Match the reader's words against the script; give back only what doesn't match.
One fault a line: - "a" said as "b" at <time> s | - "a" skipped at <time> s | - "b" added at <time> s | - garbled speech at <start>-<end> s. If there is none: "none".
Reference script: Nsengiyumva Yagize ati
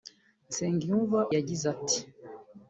none